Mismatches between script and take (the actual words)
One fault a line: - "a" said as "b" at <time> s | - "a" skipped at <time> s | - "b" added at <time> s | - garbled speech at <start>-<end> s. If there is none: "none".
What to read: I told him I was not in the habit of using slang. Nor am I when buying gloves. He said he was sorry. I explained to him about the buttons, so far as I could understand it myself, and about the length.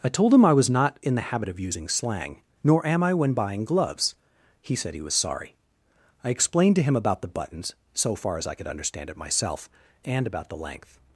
none